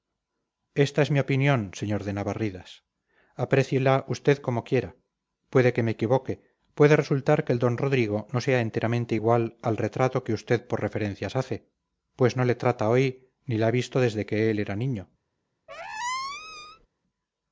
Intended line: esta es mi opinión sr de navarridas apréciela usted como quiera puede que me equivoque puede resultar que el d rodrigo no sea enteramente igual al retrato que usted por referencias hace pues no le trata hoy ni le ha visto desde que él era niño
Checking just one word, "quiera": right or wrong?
right